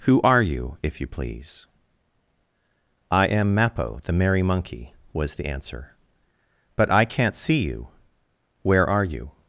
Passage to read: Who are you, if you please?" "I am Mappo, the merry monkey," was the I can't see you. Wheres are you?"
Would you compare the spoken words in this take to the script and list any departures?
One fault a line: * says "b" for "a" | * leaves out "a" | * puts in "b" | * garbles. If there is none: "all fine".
* puts in "answer But"
* says "Where" for "Wheres"